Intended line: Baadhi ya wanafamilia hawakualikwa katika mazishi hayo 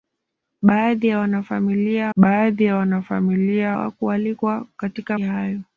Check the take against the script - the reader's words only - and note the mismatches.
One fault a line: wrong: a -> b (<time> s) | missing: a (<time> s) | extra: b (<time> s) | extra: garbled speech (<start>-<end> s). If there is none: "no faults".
extra: baadhi ya wanafamilia (2.1 s)
missing: mazishi (5.2 s)